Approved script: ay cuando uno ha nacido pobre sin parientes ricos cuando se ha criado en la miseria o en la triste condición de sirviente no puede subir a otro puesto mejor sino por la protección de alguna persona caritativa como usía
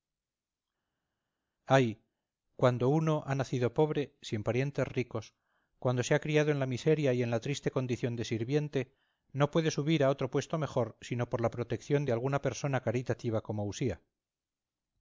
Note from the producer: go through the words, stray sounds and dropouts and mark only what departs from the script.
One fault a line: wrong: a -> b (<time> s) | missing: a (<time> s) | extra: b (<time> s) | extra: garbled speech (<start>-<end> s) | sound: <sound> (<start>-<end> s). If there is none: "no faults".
wrong: o -> y (7.1 s)